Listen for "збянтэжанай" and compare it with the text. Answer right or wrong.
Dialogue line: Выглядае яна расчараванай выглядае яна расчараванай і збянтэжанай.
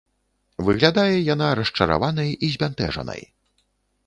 right